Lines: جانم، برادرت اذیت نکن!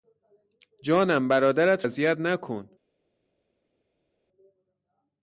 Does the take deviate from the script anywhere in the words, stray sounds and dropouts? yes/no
no